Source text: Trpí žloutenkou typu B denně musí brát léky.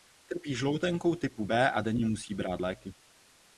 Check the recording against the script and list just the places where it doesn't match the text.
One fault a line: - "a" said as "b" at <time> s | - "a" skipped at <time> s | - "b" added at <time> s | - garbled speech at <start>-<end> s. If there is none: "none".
- "a" added at 1.7 s